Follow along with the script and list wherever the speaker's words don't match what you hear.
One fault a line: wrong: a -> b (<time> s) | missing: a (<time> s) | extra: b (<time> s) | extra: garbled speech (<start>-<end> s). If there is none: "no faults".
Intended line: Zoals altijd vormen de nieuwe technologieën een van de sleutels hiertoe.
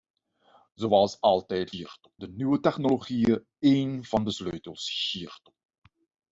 wrong: vormen -> hiertoe (1.7 s)